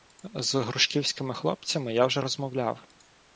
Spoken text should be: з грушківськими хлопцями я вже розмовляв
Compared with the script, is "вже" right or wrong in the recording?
right